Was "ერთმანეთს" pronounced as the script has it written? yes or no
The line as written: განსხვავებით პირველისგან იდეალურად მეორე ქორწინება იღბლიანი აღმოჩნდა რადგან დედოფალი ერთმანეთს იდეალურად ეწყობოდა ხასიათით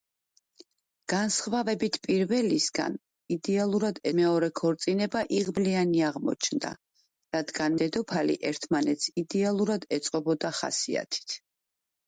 yes